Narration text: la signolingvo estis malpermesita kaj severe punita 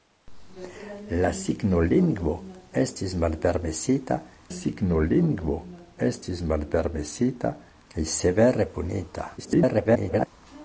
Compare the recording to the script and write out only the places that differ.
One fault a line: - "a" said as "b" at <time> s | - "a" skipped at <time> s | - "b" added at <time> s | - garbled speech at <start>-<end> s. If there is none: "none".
- "signolingvo estis malpermesita" added at 4.6 s
- garbled speech at 9.4-10.3 s